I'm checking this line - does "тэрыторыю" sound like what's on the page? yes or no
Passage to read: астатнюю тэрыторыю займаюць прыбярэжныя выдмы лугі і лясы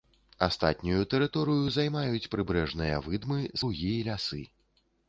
yes